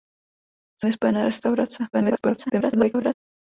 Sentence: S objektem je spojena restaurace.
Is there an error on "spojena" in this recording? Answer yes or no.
no